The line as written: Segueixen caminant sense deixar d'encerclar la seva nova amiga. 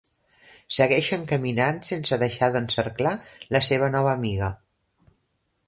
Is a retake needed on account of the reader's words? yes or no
no